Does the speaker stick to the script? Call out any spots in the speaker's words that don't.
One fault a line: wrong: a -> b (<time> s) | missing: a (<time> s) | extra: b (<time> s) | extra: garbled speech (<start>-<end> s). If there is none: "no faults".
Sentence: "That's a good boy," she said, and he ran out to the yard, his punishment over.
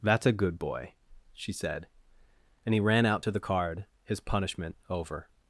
wrong: yard -> card (3.4 s)